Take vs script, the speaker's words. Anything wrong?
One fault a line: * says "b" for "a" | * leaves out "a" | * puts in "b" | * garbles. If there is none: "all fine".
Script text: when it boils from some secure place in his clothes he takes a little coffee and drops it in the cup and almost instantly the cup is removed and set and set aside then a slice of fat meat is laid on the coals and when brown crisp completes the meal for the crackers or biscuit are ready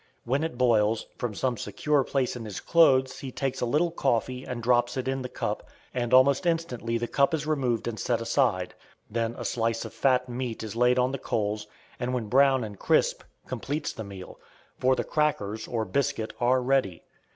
* leaves out "and set"
* puts in "and"